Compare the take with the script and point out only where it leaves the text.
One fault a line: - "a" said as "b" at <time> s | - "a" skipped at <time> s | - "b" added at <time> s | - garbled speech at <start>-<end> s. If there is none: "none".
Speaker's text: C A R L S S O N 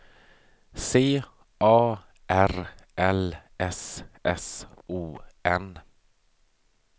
none